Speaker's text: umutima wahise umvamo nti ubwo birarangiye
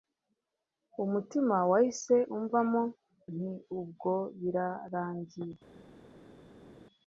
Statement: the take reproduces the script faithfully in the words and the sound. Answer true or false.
true